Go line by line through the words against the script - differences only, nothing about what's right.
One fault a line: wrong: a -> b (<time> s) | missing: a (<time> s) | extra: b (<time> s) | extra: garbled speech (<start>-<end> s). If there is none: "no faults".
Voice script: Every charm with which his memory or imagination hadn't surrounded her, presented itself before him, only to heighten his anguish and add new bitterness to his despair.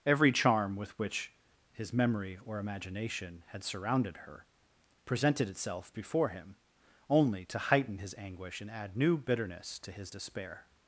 wrong: hadn't -> had (3.5 s)